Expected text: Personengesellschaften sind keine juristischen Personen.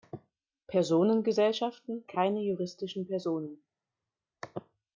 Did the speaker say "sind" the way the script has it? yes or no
no